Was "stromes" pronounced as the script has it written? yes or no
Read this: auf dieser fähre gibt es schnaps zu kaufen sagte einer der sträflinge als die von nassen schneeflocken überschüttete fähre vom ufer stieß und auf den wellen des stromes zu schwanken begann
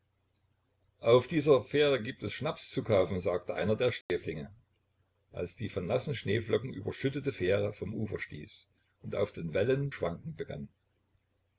no